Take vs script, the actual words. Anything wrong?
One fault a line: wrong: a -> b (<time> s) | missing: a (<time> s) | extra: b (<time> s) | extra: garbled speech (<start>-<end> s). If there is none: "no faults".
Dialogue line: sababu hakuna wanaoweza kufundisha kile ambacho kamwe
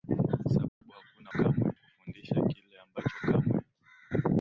wrong: wanaoweza -> kamwe (1.3 s)